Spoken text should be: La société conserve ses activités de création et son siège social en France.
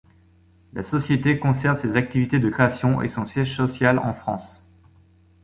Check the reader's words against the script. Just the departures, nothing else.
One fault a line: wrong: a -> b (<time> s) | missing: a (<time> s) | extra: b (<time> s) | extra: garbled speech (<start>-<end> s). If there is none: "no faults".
no faults